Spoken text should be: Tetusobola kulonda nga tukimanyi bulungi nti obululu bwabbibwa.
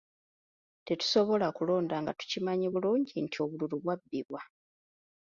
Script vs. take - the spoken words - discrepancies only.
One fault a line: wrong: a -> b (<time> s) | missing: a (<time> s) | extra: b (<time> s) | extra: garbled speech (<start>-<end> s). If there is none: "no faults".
no faults